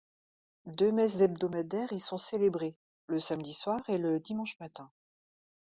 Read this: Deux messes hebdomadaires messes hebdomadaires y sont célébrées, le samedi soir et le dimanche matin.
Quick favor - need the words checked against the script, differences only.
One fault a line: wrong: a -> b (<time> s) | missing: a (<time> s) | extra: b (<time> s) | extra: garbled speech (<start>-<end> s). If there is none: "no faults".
missing: messes hebdomadaires (1.9 s)